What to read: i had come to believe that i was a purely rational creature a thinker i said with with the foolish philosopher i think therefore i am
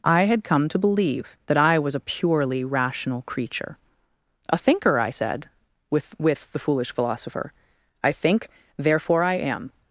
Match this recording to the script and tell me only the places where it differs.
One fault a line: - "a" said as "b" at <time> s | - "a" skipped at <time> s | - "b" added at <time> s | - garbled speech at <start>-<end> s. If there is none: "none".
none